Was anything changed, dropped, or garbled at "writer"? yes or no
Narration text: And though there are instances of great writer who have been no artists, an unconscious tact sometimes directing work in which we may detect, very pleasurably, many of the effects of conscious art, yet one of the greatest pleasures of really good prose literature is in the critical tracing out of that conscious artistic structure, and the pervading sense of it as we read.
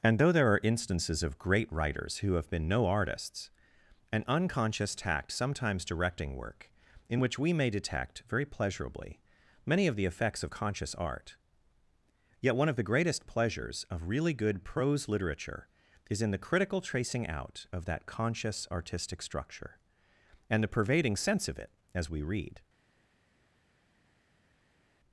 yes